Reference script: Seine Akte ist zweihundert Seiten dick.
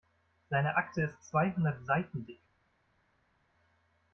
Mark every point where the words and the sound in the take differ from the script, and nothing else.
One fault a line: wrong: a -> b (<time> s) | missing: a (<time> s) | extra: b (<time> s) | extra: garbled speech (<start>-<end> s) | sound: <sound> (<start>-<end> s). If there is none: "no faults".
no faults